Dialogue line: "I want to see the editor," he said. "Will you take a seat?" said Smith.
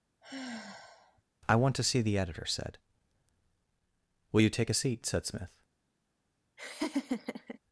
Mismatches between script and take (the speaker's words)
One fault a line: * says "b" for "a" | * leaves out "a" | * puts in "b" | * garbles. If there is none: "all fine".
* leaves out "he"